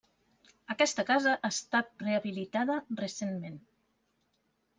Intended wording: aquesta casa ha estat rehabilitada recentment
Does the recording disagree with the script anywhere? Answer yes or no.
no